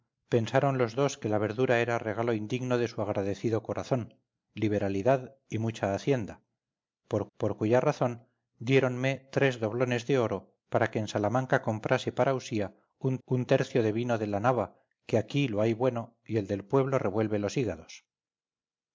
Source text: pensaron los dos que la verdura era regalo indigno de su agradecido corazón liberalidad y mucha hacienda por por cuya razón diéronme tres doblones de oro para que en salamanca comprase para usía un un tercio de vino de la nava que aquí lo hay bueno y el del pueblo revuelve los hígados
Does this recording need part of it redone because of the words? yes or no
no